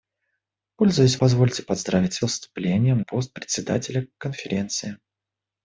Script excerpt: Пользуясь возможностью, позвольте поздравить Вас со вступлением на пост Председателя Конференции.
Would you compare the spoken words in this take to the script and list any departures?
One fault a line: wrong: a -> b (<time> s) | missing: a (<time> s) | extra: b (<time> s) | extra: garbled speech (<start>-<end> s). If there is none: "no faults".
missing: возможностью (1.2 s)
missing: Вас (2.2 s)
missing: на (3.0 s)